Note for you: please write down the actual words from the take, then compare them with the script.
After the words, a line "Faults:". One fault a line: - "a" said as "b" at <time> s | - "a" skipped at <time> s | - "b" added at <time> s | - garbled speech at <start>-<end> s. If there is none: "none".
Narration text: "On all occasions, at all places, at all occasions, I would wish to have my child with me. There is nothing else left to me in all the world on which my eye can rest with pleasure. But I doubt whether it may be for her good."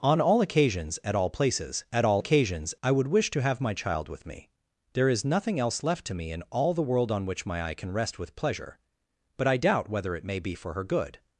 "On all occasions, at all places, at all occasions, I would wish to have my child with me. There is nothing else left to me in all the world on which my eye can rest with pleasure. But I doubt whether it may be for her good."
Faults:
none